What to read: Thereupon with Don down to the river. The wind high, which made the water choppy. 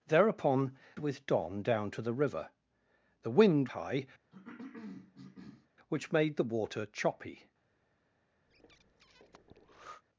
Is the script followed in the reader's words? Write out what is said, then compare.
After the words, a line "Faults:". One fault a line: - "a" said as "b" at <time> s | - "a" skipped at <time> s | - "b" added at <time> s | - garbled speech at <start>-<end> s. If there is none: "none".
Thereupon with Don down to the river. The wind high, which made the water choppy.
Faults:
none